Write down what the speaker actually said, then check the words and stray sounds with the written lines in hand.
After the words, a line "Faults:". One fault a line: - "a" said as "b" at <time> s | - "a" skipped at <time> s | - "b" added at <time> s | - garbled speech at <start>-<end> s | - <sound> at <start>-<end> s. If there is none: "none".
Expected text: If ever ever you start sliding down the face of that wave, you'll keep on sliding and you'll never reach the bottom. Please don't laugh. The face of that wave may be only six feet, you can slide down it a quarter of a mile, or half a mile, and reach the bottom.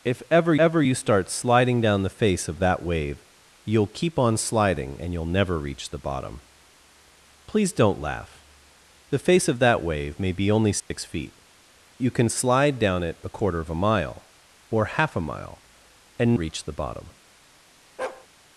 If ever ever you start sliding down the face of that wave, you'll keep on sliding and you'll never reach the bottom. Please don't laugh. The face of that wave may be only six feet, you can slide down it a quarter of a mile, or half a mile, and reach the bottom.
Faults:
- dropout at 10.8-10.9 s
- bark at 18.0-18.3 s